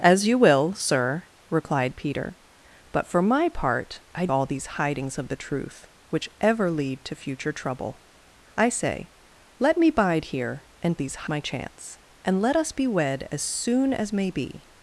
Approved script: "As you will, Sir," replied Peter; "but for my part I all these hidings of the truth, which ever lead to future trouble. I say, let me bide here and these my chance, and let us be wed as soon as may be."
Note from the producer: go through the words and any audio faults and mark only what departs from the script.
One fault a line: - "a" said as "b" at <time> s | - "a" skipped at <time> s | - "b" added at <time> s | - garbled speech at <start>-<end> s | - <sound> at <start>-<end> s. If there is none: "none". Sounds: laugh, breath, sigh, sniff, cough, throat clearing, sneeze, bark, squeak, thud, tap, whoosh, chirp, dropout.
none